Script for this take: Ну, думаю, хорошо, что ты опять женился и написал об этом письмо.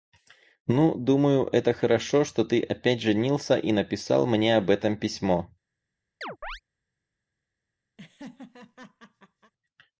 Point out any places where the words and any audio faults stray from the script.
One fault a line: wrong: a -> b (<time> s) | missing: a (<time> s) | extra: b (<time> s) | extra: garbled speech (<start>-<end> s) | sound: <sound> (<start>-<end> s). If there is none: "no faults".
extra: это (1.5 s)
extra: мне (4.3 s)
sound: chirp (6.2-6.6 s)
sound: laugh (8.0-9.5 s)